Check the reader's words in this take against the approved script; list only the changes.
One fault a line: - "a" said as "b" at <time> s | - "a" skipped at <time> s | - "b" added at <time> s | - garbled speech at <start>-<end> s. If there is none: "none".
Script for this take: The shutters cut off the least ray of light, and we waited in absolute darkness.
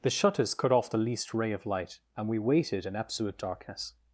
none